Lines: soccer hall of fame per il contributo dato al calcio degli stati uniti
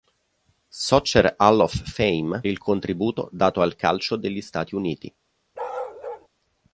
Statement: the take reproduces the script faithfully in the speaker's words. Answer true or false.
false